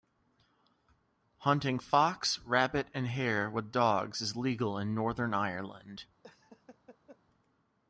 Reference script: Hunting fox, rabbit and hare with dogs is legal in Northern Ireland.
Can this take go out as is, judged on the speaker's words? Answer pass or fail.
pass